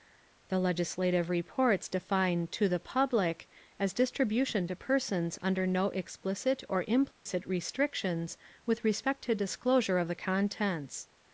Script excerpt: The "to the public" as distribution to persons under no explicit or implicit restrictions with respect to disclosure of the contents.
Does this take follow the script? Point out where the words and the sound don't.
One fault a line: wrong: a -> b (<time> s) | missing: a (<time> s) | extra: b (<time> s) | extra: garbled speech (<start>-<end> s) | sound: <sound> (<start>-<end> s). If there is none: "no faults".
extra: legislative reports define (0.6 s)
sound: dropout (7.1-7.3 s)